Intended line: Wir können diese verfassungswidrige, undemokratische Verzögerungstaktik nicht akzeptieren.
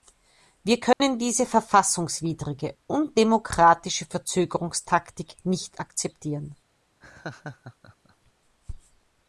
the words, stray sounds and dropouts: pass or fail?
fail